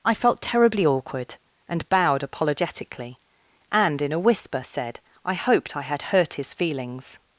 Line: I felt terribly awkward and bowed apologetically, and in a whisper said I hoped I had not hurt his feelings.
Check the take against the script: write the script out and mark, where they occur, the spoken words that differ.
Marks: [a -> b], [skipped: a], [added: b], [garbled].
I felt terribly awkward and bowed apologetically, and in a whisper said I hoped I had [skipped: not] hurt his feelings.